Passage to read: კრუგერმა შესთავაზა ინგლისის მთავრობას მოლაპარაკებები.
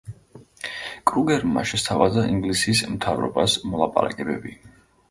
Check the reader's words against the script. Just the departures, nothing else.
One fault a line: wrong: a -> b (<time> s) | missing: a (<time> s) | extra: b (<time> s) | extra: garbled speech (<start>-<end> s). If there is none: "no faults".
no faults